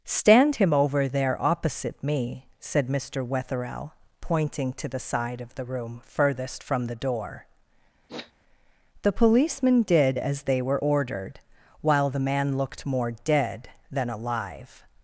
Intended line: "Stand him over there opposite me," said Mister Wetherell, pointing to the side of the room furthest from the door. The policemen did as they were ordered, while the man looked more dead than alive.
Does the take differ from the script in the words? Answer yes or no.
no